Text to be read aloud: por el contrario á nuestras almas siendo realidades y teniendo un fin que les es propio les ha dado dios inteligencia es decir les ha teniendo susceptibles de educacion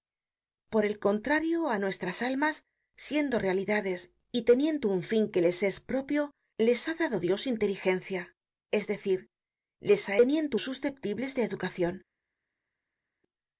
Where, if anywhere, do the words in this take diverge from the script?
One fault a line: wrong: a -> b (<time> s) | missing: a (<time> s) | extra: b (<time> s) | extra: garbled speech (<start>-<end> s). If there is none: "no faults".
no faults